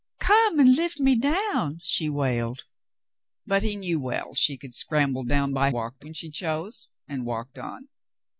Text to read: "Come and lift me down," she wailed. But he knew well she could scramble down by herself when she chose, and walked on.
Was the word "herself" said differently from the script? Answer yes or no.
yes